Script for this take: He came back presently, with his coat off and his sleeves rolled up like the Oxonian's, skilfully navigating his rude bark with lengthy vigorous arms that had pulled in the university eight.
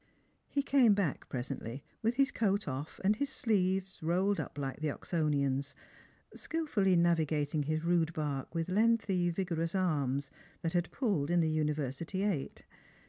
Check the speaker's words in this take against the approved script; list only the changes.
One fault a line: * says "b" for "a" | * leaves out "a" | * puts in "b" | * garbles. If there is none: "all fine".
all fine